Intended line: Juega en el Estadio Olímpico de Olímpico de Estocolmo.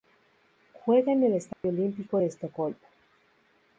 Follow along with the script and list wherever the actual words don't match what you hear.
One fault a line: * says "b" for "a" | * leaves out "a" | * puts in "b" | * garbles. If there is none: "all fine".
* leaves out "Olímpico de"